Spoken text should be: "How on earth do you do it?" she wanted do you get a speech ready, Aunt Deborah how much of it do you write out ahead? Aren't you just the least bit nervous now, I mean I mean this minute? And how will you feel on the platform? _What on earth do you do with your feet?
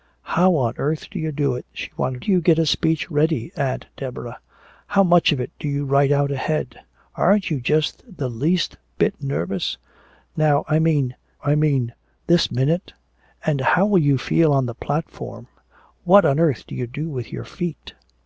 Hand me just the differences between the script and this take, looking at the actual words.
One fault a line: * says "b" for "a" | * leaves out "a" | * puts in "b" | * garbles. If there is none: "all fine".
all fine